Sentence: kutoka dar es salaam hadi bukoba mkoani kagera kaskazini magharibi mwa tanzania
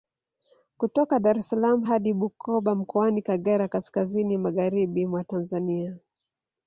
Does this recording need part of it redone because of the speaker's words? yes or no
no